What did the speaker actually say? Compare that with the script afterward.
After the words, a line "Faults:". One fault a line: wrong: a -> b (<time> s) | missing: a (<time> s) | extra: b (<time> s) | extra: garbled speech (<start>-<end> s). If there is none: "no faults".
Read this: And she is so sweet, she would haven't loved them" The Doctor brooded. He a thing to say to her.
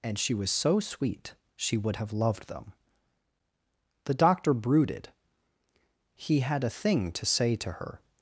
And she was so sweet, she would have loved them" The Doctor brooded. He had a thing to say to her.
Faults:
wrong: is -> was (0.3 s)
wrong: haven't -> have (2.0 s)
extra: had (6.4 s)